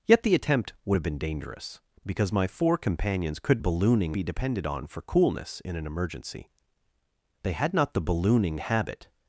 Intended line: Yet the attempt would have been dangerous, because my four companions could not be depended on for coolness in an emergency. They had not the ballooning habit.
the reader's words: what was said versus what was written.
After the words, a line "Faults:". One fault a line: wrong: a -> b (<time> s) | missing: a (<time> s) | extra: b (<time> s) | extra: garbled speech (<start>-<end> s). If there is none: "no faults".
Yet the attempt would have been dangerous, because my four companions could ballooning be depended on for coolness in an emergency. They had not the ballooning habit.
Faults:
wrong: not -> ballooning (3.6 s)